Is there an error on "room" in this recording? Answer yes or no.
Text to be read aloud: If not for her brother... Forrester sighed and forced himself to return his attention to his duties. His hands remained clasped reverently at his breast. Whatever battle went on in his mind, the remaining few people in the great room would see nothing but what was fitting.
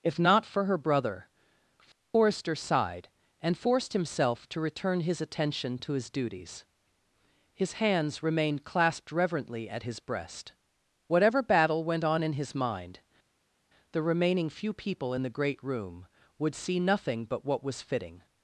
no